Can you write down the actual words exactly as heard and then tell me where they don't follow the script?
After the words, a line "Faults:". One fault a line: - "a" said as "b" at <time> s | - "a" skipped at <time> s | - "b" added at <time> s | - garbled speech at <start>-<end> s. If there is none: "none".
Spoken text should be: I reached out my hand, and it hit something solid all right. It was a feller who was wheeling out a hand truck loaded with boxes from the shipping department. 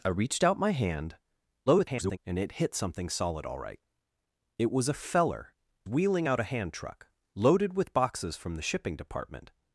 I reached out my hand, [garbled] and it hit something solid all right. It was a feller wheeling out a hand truck loaded with boxes from the shipping department.
Faults:
- garbled speech at 1.7-2.2 s
- "who was" skipped at 5.5 s